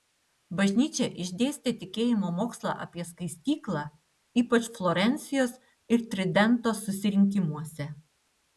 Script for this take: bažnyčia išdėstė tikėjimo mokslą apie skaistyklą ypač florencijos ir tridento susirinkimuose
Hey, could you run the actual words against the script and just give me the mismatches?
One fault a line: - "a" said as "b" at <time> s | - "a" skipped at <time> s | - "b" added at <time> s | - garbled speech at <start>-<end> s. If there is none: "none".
none